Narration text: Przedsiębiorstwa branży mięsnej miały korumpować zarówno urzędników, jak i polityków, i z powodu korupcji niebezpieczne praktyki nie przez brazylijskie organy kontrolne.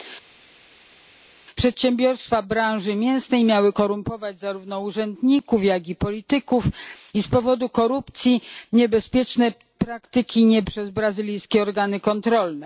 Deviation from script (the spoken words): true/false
false